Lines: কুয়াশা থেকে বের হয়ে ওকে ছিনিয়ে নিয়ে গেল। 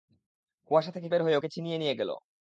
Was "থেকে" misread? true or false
false